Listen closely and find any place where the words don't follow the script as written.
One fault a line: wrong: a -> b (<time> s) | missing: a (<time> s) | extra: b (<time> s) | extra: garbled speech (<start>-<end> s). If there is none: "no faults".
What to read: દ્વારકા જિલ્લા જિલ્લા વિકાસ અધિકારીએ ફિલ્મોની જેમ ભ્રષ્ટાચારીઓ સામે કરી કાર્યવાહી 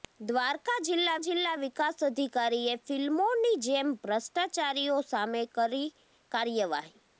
no faults